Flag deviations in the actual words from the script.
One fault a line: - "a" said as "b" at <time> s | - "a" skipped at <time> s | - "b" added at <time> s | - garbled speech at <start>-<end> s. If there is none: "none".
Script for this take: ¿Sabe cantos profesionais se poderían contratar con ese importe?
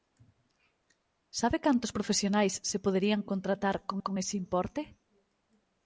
- "con" added at 4.0 s